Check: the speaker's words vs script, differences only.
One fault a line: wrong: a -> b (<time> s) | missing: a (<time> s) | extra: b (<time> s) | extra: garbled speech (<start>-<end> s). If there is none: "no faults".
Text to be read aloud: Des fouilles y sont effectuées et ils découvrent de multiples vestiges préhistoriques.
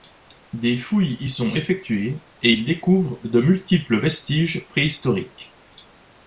no faults